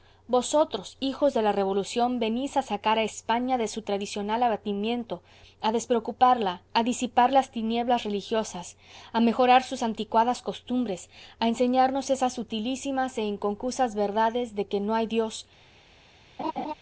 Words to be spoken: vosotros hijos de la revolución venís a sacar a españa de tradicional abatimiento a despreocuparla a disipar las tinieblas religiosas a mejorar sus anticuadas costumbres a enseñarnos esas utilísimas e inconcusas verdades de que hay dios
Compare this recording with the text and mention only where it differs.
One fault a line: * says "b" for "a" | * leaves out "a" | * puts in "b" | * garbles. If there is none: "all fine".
* puts in "su"
* puts in "no"